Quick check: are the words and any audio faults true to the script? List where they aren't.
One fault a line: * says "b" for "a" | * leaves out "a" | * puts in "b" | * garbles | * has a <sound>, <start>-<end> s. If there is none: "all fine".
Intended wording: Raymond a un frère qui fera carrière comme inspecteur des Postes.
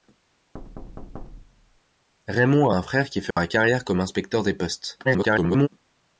* has a thud, 0.5-1.8 s
* has a dropout, 3.3-3.4 s
* garbles